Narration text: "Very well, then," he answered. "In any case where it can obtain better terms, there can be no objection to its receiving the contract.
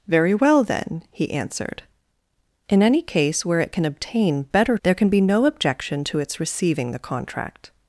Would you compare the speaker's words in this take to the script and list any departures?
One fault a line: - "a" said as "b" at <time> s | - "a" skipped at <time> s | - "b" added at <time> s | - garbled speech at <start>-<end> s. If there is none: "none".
- "terms" skipped at 4.8 s